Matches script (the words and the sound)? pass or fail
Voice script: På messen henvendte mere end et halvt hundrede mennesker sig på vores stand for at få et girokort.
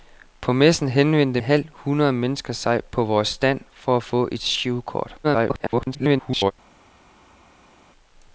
fail